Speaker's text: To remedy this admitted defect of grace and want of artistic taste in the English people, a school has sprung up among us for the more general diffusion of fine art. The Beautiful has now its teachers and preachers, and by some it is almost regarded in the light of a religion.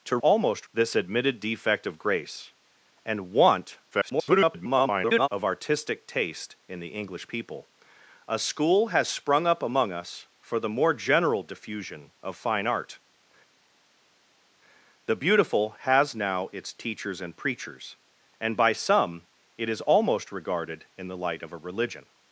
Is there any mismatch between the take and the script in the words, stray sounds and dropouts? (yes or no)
yes